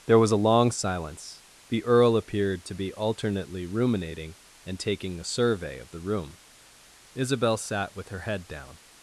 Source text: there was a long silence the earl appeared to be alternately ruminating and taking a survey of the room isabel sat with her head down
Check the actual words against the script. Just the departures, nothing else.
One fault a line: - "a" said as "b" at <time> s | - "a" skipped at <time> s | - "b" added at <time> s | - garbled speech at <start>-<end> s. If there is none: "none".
none